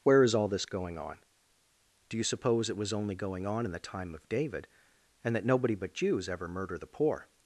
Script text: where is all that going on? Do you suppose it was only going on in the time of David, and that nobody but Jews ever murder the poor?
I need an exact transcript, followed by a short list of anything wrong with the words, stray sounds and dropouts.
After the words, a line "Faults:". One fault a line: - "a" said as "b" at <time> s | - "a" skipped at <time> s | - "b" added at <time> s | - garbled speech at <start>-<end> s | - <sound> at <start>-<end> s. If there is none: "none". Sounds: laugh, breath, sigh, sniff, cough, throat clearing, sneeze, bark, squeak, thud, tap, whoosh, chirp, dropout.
where is all this going on? Do you suppose it was only going on in the time of David, and that nobody but Jews ever murder the poor?
Faults:
- "that" said as "this" at 0.5 s